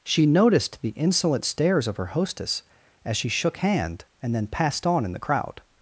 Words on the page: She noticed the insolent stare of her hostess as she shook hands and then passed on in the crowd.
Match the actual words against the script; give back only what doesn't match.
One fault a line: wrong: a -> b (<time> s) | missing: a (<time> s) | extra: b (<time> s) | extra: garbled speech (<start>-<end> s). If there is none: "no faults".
wrong: stare -> stares (1.4 s)
wrong: hands -> hand (3.6 s)